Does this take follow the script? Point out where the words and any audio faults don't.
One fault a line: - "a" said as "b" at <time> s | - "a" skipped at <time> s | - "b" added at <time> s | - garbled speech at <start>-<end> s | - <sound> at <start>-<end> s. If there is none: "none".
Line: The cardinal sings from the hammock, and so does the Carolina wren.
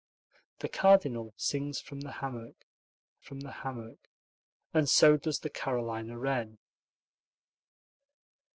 - "from the hammock" added at 3.2 s